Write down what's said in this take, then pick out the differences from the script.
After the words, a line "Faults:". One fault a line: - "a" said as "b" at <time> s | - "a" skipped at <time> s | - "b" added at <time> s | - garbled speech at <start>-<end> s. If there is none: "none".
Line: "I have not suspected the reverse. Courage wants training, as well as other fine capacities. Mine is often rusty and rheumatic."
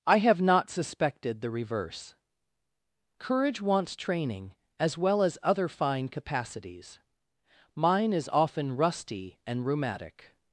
"I have not suspected the reverse. Courage wants training, as well as other fine capacities. Mine is often rusty and rheumatic."
Faults:
none